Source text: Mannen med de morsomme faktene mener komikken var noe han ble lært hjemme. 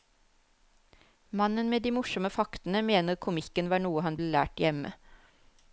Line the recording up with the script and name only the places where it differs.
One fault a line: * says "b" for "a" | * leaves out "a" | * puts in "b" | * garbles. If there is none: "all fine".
all fine